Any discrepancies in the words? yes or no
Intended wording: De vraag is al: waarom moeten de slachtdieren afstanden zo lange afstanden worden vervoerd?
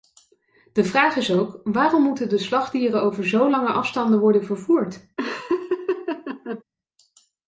yes